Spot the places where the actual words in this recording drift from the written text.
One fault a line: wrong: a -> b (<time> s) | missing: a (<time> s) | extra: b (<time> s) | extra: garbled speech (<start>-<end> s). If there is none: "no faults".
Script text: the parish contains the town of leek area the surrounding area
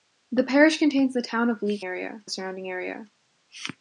no faults